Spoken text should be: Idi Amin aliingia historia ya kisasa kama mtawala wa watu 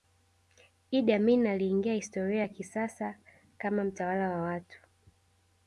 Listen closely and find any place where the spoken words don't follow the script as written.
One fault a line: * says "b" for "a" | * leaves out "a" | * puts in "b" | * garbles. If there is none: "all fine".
all fine